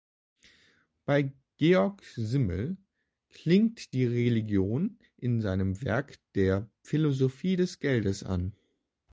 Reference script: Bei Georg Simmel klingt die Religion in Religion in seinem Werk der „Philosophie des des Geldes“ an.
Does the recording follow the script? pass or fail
fail